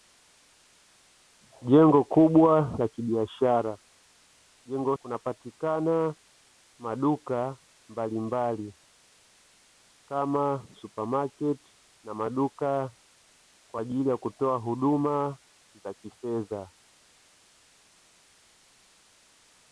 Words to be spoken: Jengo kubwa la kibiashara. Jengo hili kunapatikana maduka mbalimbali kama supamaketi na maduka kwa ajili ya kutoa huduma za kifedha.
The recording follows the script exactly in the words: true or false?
false